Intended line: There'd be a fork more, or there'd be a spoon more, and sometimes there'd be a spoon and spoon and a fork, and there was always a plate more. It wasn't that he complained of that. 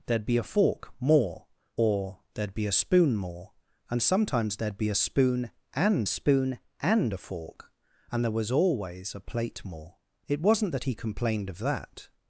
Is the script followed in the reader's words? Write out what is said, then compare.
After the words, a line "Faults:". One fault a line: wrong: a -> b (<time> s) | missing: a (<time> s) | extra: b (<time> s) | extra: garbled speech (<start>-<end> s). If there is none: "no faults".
There'd be a fork more, or there'd be a spoon more, and sometimes there'd be a spoon and spoon and a fork, and there was always a plate more. It wasn't that he complained of that.
Faults:
no faults